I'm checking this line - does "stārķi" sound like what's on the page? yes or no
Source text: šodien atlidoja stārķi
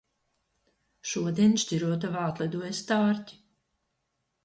yes